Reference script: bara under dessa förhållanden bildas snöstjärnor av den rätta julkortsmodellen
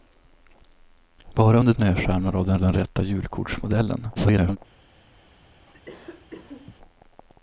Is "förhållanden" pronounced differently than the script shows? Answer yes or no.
yes